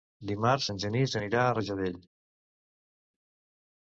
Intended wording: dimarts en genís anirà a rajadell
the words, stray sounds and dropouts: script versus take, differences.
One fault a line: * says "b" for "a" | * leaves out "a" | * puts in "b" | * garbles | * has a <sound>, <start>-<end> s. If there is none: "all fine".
all fine